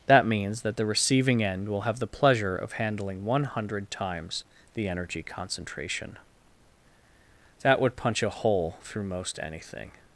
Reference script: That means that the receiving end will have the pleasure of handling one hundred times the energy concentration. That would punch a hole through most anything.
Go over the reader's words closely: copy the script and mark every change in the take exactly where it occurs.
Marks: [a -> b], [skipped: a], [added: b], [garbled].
That means that the receiving end will have the pleasure of handling one hundred times the energy concentration. That would punch a hole through most anything.